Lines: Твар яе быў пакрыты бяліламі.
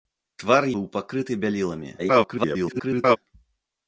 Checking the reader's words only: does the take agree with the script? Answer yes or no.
no